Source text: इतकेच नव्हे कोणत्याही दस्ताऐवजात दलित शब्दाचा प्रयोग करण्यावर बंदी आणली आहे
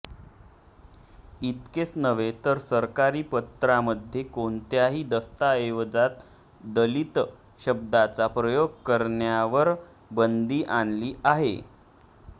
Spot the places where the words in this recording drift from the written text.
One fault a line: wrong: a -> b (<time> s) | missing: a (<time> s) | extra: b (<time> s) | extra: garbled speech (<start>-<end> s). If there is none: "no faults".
extra: तर सरकारी पत्रामध्ये (2.4 s)